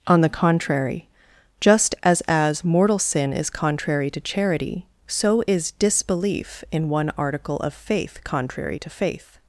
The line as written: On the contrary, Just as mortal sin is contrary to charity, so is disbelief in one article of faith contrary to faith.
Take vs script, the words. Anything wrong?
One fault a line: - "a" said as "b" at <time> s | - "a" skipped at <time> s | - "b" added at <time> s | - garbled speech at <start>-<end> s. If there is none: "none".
- "as" added at 2.2 s